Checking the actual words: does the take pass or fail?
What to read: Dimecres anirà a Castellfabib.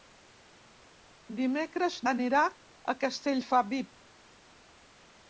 pass